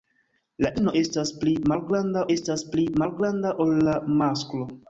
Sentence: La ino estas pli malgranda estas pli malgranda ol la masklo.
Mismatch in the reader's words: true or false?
false